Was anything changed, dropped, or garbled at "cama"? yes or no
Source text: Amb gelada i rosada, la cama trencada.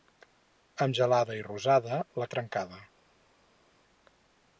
yes